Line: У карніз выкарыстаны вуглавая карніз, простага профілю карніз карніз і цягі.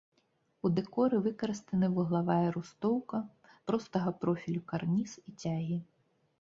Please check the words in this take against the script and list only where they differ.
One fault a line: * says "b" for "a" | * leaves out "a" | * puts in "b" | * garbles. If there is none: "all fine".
* says "дэкоры" for "карніз"
* says "рустоўка" for "карніз"
* leaves out "карніз"